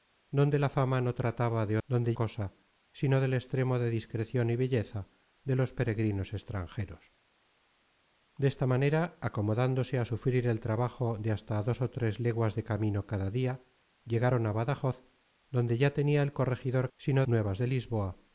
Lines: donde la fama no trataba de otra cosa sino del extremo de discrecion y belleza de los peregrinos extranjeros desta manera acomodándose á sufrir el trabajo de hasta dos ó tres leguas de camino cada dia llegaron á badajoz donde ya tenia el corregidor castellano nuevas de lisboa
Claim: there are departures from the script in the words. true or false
true